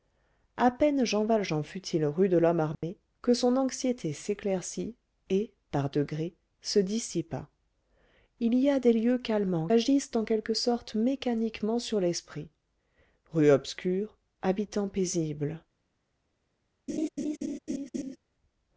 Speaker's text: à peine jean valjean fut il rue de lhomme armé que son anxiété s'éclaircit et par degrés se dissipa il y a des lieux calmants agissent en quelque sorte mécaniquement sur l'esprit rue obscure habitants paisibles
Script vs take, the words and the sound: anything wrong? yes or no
yes